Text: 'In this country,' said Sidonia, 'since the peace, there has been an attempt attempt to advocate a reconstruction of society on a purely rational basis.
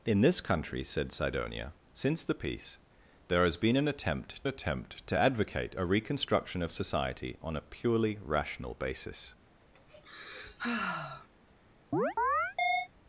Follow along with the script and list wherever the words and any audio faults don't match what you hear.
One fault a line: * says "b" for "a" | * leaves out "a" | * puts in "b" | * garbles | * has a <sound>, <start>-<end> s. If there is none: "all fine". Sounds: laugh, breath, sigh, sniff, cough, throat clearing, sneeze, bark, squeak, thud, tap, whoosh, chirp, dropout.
* has a sigh, 9.7-11.3 s
* has a chirp, 11.9-12.9 s